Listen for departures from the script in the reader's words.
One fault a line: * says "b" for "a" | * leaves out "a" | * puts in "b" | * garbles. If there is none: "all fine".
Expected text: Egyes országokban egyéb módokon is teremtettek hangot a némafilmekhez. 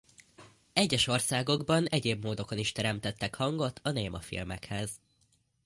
all fine